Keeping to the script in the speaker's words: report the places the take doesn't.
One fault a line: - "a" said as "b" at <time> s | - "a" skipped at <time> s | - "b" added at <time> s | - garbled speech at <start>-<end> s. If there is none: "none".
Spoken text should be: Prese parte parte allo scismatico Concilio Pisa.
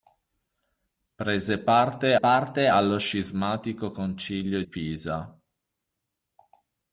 none